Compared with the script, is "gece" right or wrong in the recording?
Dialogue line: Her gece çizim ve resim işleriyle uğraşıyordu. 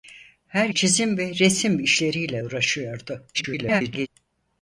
wrong